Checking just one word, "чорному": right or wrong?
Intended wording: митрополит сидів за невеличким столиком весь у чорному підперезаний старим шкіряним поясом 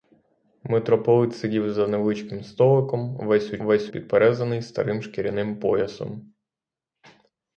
wrong